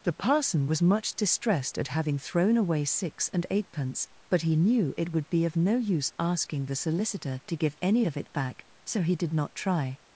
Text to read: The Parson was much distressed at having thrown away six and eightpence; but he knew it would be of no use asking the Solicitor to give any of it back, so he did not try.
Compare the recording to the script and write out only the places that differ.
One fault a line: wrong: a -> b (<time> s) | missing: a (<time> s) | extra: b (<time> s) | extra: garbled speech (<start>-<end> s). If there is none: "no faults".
no faults